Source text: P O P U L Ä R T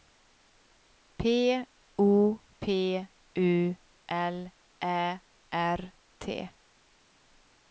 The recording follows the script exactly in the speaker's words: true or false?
true